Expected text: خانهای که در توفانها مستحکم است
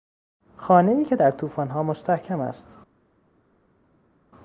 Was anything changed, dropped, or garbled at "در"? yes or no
no